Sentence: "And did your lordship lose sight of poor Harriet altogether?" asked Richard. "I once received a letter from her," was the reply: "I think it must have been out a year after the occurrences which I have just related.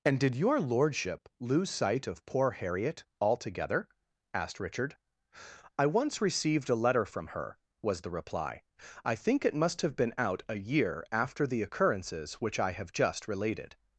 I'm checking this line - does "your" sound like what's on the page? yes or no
yes